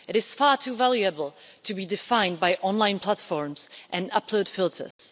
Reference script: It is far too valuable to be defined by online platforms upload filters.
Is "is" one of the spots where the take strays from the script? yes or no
no